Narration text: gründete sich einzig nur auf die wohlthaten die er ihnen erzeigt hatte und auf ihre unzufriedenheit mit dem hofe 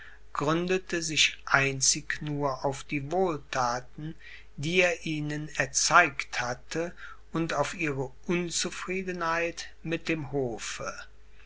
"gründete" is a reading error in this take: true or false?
false